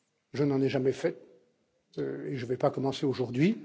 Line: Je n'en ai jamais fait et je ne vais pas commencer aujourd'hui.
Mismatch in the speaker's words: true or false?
false